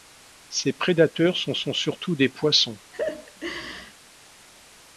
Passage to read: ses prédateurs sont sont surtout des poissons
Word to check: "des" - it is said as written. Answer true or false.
true